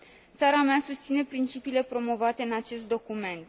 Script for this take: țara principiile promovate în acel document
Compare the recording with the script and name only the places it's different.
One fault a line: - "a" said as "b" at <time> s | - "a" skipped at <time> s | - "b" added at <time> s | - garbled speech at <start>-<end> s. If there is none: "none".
- "mea susține" added at 0.6 s
- "acel" said as "acest" at 2.5 s